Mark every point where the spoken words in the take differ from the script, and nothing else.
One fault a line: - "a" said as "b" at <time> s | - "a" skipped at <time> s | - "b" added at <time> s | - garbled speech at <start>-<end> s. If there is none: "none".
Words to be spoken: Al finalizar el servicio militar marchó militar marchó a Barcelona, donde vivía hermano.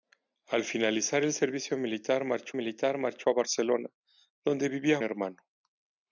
none